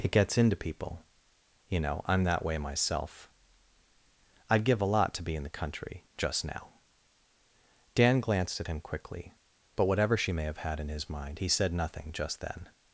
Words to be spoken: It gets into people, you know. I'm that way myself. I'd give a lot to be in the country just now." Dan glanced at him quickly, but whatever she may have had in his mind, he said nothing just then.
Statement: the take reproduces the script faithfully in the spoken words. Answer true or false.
true